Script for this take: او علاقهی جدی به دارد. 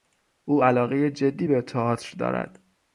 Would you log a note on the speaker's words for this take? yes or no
yes